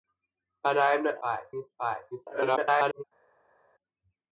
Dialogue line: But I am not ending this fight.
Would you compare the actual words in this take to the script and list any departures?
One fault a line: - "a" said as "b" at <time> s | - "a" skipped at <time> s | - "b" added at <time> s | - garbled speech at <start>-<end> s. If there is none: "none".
- "ending" said as "fight" at 1.2 s
- garbled speech at 2.1-3.0 s